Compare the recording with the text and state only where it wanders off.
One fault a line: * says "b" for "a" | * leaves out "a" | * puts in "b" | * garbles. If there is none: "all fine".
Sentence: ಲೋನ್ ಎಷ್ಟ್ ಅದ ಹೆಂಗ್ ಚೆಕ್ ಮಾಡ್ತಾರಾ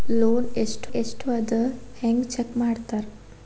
* puts in "ಎಷ್ಟ್"